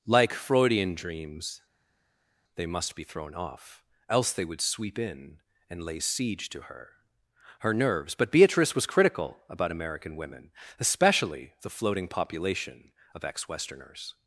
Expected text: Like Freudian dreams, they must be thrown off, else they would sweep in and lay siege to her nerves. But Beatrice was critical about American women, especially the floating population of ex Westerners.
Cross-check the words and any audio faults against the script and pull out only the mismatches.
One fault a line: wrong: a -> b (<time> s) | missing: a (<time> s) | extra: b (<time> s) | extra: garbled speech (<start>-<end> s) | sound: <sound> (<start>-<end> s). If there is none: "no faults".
extra: her (7.6 s)